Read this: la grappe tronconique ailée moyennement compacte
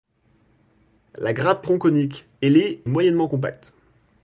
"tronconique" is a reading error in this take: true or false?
false